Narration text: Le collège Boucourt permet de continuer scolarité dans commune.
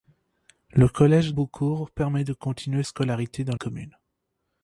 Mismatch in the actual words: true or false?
false